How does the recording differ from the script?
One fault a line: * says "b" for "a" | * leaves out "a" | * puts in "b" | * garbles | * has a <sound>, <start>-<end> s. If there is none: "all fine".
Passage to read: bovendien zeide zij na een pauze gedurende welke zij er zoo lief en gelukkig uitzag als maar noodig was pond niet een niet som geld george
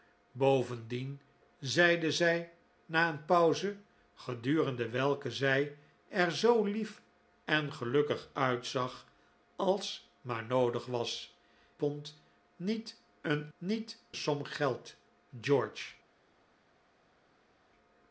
all fine